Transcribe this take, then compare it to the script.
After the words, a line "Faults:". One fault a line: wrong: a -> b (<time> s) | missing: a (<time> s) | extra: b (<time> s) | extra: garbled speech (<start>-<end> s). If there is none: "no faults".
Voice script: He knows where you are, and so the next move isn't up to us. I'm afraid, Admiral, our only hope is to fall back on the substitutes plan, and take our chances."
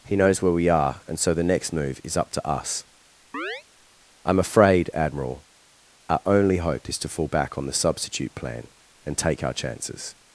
He knows where we are, and so the next move is up to us. I'm afraid, Admiral, our only hope is to fall back on the substitute plan, and take our chances."
Faults:
wrong: you -> we (0.5 s)
wrong: isn't -> is (2.0 s)
wrong: substitutes -> substitute (7.7 s)